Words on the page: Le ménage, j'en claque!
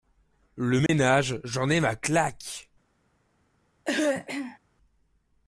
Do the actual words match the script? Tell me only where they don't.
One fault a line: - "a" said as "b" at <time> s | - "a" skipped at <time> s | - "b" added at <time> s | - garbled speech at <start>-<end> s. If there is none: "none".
- "ai ma" added at 1.7 s